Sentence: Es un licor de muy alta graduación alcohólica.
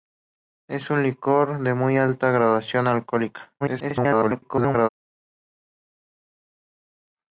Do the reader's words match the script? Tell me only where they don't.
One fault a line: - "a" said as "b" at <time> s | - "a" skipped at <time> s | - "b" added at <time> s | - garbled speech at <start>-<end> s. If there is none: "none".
- garbled speech at 3.6-4.9 s